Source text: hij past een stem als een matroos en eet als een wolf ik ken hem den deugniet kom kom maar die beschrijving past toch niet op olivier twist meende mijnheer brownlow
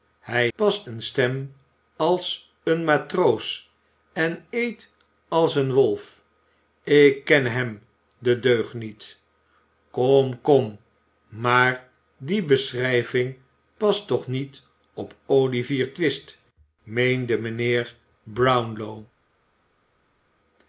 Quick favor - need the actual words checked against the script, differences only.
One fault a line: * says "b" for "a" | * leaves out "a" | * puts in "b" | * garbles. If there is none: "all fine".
all fine